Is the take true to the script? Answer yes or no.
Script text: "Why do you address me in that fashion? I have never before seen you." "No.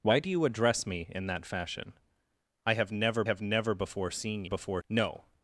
no